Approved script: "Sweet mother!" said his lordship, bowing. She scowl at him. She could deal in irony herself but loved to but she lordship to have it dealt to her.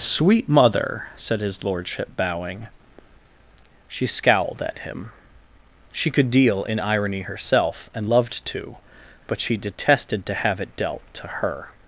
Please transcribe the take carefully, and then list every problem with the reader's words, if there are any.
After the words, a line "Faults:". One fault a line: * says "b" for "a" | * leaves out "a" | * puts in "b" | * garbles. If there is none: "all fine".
"Sweet mother!" said his lordship, bowing. She scowled at him. She could deal in irony herself and loved to but she detested to have it dealt to her.
Faults:
* says "scowled" for "scowl"
* says "and" for "but"
* says "detested" for "lordship"